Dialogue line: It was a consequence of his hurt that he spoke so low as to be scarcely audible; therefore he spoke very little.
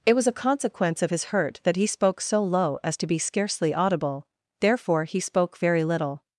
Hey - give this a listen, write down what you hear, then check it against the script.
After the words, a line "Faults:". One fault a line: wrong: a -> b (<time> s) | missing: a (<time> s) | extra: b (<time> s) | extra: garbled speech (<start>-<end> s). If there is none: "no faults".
It was a consequence of his hurt that he spoke so low as to be scarcely audible; therefore he spoke very little.
Faults:
no faults